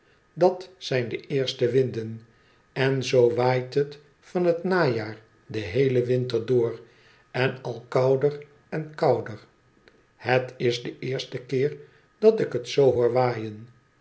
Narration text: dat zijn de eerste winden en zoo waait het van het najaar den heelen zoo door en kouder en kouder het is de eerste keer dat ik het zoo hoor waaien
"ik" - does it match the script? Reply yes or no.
yes